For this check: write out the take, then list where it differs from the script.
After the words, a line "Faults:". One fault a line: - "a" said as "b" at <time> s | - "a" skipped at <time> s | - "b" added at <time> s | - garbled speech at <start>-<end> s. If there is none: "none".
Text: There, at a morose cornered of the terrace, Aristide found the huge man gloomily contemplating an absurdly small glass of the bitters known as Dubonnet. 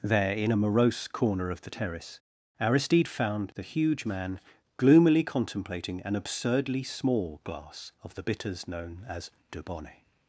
There, in a morose corner of the terrace, Aristide found the huge man gloomily contemplating an absurdly small glass of the bitters known as Dubonnet.
Faults:
- "at" said as "in" at 0.3 s
- "cornered" said as "corner" at 1.1 s